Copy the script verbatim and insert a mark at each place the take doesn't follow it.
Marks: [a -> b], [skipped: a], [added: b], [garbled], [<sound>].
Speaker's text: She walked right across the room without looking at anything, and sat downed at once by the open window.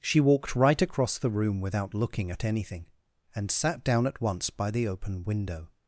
She walked right across the room without looking at anything, and sat [downed -> down] at once by the open window.